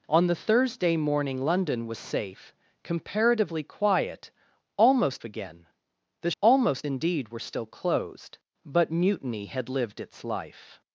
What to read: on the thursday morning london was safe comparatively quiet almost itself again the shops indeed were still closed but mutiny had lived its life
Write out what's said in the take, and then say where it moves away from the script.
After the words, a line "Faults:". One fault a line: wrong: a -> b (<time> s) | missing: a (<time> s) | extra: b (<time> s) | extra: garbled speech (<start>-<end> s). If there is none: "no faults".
on the thursday morning london was safe comparatively quiet almost again the almost indeed were still closed but mutiny had lived its life
Faults:
missing: itself (5.2 s)
wrong: shops -> almost (6.4 s)